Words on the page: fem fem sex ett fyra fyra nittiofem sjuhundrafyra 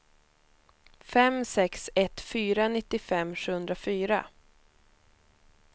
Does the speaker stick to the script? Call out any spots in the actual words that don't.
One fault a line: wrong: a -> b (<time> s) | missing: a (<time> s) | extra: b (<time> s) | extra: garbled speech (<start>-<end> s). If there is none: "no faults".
missing: fem (1.4 s)
missing: fyra (2.7 s)